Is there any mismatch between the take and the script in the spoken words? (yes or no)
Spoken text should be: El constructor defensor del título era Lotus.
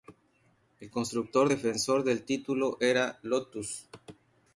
no